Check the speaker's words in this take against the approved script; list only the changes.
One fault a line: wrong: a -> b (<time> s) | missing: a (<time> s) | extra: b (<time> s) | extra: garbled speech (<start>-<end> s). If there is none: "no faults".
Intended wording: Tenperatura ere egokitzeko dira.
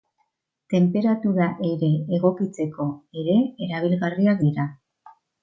extra: ere erabilgarriak (3.2 s)